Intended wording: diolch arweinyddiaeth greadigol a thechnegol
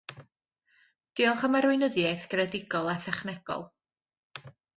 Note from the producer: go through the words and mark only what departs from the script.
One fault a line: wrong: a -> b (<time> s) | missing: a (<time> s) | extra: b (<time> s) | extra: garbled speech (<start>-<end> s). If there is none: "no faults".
extra: am (1.5 s)